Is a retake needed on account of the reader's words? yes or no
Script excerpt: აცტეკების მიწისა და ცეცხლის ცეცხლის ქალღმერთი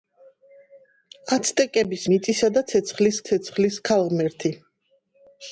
no